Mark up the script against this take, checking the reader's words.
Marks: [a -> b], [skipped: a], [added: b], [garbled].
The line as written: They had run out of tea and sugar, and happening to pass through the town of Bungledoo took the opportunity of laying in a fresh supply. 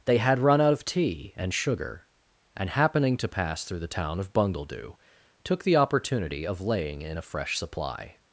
They had run out of tea and sugar, and happening to pass through the town of Bungledoo took the opportunity of laying in a fresh supply.